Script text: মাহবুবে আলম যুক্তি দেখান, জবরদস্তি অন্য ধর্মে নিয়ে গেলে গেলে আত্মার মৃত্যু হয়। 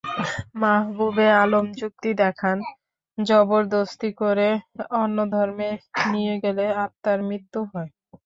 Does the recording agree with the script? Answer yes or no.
no